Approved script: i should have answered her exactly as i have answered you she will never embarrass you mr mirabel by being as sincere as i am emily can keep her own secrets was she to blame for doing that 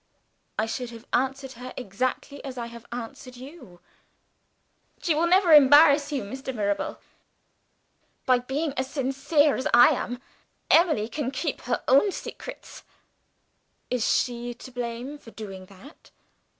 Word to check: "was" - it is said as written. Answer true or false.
false